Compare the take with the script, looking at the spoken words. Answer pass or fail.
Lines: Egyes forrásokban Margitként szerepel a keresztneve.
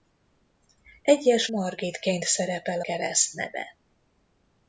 fail